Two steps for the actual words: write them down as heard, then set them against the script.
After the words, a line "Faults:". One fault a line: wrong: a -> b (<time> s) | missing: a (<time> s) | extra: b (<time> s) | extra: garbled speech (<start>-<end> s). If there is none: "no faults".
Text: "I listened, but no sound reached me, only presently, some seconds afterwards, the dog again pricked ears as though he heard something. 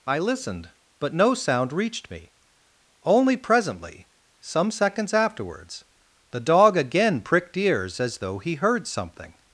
"I listened, but no sound reached me, only presently, some seconds afterwards, the dog again pricked ears as though he heard something.
Faults:
no faults